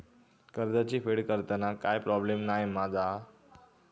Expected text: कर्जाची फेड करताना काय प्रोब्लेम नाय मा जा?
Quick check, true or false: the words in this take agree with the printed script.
true